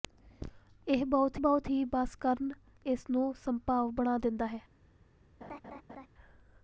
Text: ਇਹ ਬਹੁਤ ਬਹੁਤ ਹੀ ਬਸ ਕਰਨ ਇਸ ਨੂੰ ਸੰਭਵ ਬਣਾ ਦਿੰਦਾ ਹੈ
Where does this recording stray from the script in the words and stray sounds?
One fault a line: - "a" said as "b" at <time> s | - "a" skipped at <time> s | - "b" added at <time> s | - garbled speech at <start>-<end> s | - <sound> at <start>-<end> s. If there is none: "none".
- laugh at 5.4-6.1 s